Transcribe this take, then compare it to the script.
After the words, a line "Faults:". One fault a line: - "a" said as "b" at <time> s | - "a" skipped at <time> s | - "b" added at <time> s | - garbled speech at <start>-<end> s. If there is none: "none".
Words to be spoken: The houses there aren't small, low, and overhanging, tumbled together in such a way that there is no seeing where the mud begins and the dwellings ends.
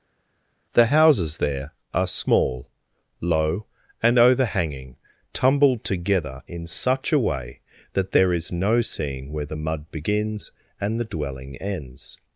The houses there are small, low, and overhanging, tumbled together in such a way that there is no seeing where the mud begins and the dwelling ends.
Faults:
- "aren't" said as "are" at 1.9 s
- "dwellings" said as "dwelling" at 11.0 s